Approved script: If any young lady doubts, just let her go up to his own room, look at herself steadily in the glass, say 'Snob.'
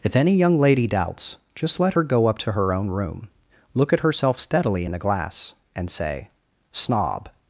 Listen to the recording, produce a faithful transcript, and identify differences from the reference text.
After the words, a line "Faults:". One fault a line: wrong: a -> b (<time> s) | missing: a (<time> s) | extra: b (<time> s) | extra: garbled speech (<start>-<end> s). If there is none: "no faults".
If any young lady doubts, just let her go up to her own room, look at herself steadily in the glass, and say 'Snob.'
Faults:
wrong: his -> her (2.5 s)
extra: and (5.7 s)